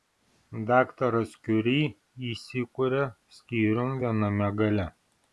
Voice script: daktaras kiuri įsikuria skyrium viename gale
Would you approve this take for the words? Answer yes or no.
yes